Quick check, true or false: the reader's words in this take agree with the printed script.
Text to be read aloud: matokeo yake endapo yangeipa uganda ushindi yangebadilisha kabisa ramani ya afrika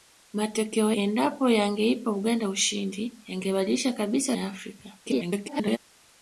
false